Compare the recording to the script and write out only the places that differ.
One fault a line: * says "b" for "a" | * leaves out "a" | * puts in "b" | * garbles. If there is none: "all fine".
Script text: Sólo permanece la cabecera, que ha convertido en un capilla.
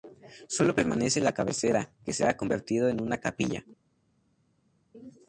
* puts in "se"
* says "una" for "un"